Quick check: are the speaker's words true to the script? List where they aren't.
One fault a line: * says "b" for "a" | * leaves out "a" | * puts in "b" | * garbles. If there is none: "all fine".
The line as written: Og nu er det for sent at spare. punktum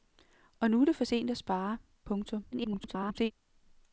* garbles